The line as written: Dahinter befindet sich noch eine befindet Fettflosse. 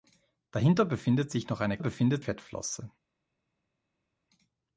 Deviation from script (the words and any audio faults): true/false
false